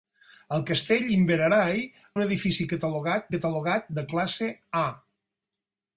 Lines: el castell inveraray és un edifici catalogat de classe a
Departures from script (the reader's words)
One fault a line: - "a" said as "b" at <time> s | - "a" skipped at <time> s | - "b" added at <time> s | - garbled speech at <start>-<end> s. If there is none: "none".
- "és" skipped at 1.8 s
- "catalogat" added at 3.4 s